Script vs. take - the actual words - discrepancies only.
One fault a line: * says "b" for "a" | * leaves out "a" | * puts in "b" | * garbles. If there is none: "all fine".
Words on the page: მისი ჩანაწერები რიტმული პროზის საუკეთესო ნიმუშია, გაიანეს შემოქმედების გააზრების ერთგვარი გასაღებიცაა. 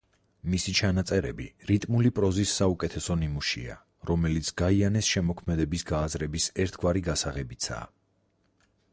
* puts in "რომელიც"